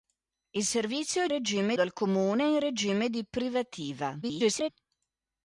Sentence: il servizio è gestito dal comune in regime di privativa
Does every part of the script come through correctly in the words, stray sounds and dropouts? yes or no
no